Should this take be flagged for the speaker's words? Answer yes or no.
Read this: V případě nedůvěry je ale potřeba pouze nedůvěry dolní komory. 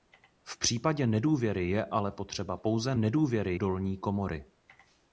no